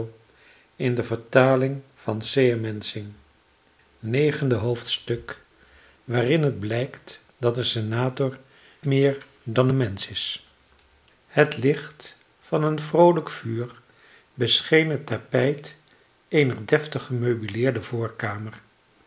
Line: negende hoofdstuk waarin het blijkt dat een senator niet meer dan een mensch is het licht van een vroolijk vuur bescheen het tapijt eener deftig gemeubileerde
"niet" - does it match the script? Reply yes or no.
no